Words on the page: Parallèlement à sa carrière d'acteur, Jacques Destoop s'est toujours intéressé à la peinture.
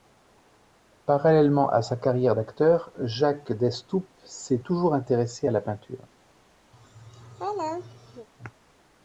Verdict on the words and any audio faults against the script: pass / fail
fail